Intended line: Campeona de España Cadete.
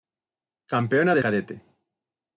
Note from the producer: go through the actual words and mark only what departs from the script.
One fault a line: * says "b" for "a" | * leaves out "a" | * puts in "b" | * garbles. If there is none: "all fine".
* leaves out "España"